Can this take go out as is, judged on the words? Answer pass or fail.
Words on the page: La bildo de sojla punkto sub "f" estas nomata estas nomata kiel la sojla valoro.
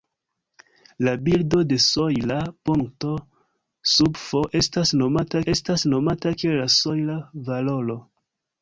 pass